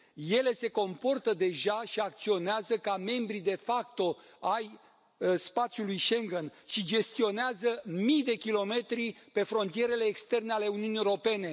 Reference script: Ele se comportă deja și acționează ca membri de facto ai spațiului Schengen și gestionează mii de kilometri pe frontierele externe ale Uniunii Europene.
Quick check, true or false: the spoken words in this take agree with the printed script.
true